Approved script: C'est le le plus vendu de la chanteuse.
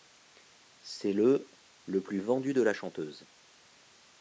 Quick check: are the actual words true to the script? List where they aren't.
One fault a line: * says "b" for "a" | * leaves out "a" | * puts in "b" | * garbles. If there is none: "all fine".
all fine